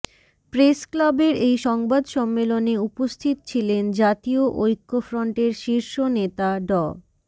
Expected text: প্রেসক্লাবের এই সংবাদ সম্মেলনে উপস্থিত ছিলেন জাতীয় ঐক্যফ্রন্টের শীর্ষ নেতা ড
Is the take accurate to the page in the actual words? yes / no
yes